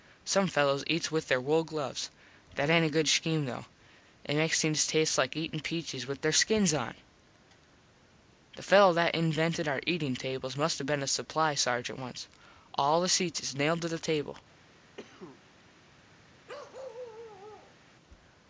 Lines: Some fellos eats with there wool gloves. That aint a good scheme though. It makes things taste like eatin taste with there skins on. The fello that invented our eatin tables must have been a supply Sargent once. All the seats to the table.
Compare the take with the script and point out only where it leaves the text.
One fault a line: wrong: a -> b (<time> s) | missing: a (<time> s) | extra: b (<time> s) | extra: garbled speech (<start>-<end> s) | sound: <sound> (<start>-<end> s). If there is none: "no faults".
wrong: taste -> peaches (5.6 s)
extra: is nailed (13.4 s)
sound: cough (15.0-15.4 s)
sound: bark (16.5-17.8 s)